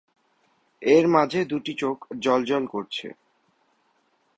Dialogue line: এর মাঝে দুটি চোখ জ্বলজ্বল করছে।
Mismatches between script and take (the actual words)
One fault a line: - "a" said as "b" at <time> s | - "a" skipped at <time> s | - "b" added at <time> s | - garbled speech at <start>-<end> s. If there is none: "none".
none